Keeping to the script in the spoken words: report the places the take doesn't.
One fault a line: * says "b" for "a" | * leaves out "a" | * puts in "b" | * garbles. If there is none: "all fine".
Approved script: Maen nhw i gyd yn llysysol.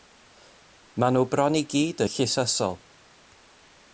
* puts in "bron"